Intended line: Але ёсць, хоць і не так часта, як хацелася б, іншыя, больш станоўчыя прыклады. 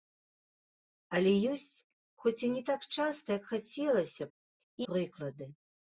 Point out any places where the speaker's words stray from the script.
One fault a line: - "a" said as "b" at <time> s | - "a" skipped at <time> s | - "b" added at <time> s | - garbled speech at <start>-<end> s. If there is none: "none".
- "іншыя больш станоўчыя" skipped at 4.3 s